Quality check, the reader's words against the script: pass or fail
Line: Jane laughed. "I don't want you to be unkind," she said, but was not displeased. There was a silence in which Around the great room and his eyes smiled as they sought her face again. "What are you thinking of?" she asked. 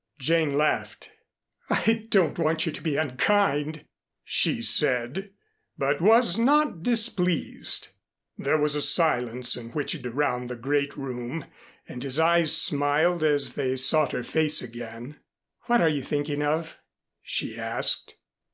pass